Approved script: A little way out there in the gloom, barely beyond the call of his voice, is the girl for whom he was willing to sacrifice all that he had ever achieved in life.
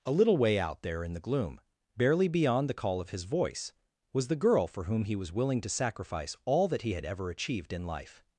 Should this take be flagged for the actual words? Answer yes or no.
yes